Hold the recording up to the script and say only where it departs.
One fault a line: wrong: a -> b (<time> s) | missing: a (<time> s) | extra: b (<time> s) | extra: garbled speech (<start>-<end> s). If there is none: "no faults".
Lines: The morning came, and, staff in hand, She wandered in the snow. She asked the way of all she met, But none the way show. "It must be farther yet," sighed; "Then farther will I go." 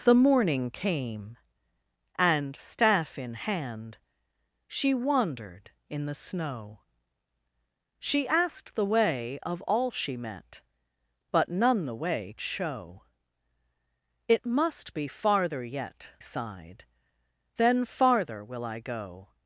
no faults